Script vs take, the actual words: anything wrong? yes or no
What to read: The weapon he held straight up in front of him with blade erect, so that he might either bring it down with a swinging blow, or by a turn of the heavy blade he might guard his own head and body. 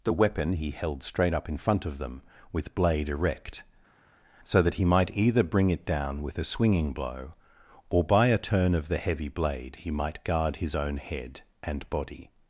yes